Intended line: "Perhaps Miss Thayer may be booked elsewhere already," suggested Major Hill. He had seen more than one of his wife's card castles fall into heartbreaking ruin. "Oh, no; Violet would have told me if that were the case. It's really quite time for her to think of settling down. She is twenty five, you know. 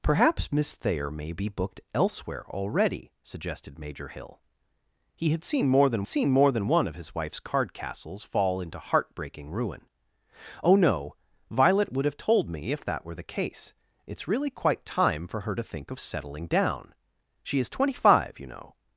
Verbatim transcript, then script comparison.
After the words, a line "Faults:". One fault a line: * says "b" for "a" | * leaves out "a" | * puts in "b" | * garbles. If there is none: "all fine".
"Perhaps Miss Thayer may be booked elsewhere already," suggested Major Hill. He had seen more than seen more than one of his wife's card castles fall into heartbreaking ruin. "Oh, no; Violet would have told me if that were the case. It's really quite time for her to think of settling down. She is twenty five, you know.
Faults:
* puts in "seen more than"